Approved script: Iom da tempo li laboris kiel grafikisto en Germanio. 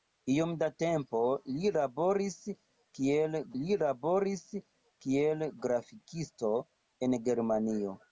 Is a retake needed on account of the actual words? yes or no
yes